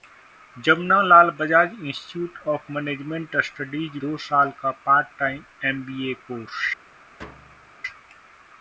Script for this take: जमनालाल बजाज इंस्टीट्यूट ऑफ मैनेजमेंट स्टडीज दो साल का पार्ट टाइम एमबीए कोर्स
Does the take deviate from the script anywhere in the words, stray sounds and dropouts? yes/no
yes